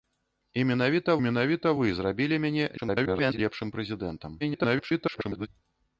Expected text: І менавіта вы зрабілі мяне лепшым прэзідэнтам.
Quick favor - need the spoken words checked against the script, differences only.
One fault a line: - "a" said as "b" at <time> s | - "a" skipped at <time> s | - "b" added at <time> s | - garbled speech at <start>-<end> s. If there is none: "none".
- "менавіта" added at 1.2 s
- garbled speech at 2.8-3.4 s
- garbled speech at 4.4-5.5 s